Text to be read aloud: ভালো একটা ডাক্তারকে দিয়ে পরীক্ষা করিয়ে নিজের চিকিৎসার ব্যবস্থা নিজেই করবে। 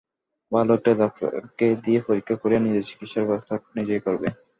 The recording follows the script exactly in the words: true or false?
true